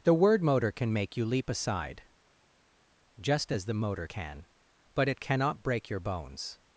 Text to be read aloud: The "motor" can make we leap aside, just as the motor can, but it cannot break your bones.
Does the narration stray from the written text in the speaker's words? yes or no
yes